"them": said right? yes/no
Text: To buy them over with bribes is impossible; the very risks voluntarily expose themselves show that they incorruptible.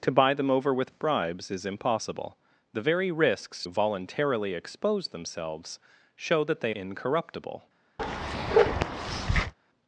yes